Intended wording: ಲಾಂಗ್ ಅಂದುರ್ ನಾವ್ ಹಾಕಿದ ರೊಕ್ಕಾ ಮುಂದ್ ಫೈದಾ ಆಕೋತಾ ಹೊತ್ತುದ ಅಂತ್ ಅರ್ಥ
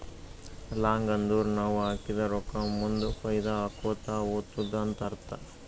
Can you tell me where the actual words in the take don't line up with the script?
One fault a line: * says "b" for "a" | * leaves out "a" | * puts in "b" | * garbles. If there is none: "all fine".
all fine